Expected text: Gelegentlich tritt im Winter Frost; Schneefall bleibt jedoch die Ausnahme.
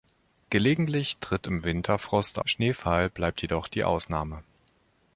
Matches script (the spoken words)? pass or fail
pass